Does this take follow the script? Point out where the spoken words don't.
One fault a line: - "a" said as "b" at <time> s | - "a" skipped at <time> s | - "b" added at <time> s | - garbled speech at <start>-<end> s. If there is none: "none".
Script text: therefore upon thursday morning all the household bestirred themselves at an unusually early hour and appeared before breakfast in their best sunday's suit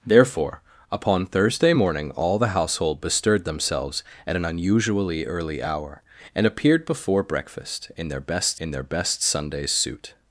- "in their best" added at 8.6 s